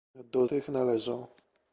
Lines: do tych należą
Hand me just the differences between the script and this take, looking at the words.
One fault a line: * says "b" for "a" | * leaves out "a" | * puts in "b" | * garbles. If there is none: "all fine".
all fine